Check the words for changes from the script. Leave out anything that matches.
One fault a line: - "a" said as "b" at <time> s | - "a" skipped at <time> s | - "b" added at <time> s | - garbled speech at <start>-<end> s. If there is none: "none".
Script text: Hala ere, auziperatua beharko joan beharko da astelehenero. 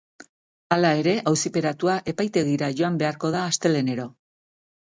- "beharko" said as "epaitegira" at 2.1 s